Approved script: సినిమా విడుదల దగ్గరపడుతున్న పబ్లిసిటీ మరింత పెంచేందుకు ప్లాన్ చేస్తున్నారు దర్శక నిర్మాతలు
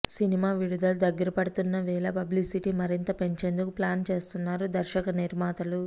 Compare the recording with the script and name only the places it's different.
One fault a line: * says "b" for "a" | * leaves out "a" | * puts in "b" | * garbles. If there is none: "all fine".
* puts in "వేళ"